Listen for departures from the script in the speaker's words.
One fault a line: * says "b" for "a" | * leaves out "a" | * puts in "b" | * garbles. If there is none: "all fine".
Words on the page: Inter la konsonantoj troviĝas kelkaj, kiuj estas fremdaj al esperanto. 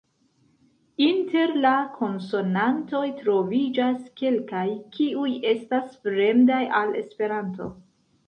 all fine